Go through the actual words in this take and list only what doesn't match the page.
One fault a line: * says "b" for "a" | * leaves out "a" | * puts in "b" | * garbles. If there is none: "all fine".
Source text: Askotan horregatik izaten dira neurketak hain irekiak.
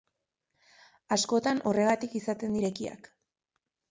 * leaves out "dira neurketak hain"